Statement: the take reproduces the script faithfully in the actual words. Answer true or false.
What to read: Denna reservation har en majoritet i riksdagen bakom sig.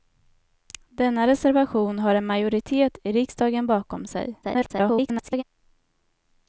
false